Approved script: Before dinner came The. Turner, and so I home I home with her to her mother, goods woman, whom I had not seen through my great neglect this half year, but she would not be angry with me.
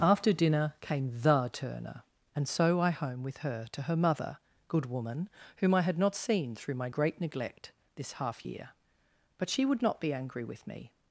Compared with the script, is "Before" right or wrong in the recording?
wrong